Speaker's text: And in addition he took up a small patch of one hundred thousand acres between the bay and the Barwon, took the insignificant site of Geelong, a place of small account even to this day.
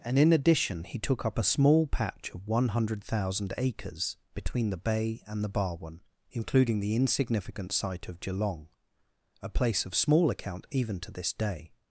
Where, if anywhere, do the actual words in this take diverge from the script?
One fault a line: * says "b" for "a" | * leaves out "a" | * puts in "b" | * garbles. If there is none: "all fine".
* says "including" for "took"